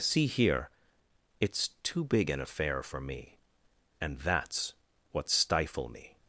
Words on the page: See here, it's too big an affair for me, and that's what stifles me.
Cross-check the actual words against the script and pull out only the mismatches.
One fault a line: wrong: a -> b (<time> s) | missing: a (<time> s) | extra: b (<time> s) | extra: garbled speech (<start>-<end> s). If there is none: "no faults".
wrong: stifles -> stifle (5.3 s)